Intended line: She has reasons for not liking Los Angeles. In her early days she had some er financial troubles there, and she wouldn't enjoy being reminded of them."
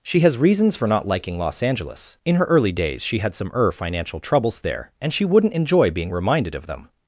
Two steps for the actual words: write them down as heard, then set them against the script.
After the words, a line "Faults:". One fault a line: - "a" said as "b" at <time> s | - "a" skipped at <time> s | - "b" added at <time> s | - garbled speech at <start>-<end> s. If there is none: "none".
She has reasons for not liking Los Angeles. In her early days she had some er financial troubles there, and she wouldn't enjoy being reminded of them."
Faults:
none